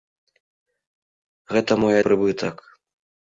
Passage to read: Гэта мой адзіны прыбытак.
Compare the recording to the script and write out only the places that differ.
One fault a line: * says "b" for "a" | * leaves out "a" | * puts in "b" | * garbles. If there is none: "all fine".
* leaves out "адзіны"